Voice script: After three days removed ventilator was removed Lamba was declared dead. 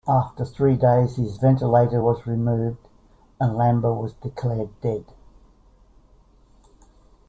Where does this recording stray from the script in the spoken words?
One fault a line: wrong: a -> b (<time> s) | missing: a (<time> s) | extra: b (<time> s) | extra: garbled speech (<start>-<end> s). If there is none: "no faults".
wrong: removed -> his (1.2 s)
extra: and (3.4 s)